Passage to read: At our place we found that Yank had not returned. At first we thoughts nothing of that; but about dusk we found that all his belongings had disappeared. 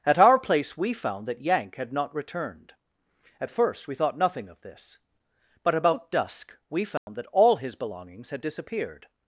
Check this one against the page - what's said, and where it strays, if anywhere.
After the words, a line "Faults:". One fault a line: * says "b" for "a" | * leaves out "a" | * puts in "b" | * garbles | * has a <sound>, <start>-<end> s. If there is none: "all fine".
At our place we found that Yank had not returned. At first we thought nothing of this; but about dusk we found that all his belongings had disappeared.
Faults:
* says "thought" for "thoughts"
* says "this" for "that"
* has a dropout, 7.0-7.1 s